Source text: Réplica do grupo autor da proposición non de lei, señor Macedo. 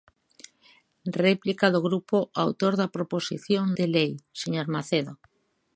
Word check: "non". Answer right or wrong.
wrong